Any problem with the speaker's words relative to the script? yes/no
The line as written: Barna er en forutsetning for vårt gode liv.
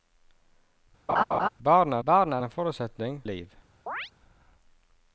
yes